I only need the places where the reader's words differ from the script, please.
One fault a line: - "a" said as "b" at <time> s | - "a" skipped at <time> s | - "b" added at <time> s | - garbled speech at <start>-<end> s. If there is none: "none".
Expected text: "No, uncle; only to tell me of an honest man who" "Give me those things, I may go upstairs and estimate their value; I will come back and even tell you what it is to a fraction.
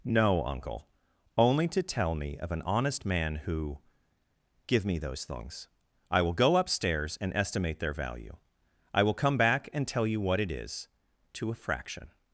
- "may" said as "will" at 6.2 s
- "even" skipped at 9.9 s